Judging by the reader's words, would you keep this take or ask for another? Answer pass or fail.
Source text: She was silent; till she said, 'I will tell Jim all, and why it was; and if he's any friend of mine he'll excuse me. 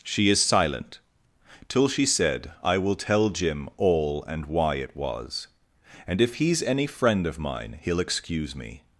fail